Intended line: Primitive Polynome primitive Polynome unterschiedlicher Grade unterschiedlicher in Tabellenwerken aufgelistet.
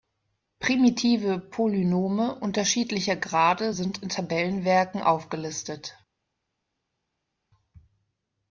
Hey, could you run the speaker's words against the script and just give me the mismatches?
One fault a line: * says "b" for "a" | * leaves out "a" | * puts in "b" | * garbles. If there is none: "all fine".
* leaves out "primitive Polynome"
* says "sind" for "unterschiedlicher"